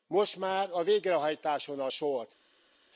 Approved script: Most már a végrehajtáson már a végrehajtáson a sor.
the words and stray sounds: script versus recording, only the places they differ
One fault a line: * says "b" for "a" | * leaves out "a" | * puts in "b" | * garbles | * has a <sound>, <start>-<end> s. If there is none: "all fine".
* leaves out "már a végrehajtáson"